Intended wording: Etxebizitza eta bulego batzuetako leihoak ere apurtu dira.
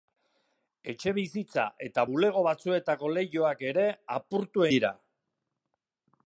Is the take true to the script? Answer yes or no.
yes